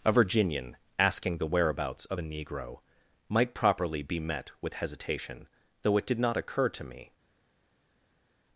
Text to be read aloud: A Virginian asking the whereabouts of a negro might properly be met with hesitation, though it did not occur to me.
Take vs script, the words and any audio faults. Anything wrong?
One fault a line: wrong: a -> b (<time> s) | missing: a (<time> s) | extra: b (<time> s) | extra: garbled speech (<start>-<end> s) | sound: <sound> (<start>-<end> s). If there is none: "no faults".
no faults